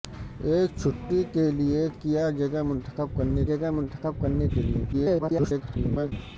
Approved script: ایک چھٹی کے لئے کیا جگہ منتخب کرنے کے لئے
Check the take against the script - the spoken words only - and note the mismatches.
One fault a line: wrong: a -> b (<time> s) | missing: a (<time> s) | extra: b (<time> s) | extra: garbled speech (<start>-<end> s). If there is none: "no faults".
extra: جگہ منتخب کرنے (3.5 s)
extra: garbled speech (4.9-6.1 s)